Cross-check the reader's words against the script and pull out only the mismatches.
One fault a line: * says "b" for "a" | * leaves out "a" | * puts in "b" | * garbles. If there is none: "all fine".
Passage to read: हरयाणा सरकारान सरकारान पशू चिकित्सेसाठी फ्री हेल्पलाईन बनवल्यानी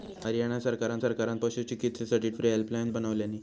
all fine